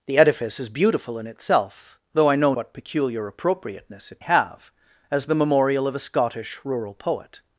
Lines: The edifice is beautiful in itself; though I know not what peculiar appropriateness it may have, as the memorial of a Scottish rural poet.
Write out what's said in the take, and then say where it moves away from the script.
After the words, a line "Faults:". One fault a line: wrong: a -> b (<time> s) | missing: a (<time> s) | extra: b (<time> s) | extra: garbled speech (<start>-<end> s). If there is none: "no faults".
The edifice is beautiful in itself; though I know what peculiar appropriateness it have, as the memorial of a Scottish rural poet.
Faults:
missing: not (2.5 s)
missing: may (4.2 s)